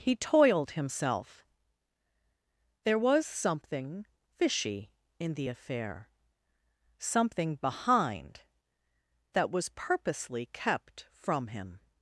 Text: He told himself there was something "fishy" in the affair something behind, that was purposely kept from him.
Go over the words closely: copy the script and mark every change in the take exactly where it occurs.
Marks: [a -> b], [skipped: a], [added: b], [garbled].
He [told -> toiled] himself there was something "fishy" in the affair something behind, that was purposely kept from him.